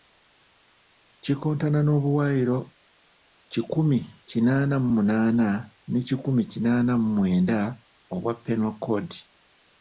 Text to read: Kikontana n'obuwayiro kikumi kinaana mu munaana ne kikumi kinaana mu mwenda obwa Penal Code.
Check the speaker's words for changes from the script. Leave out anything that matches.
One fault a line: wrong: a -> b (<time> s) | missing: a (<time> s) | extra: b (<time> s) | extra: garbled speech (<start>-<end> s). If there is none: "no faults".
no faults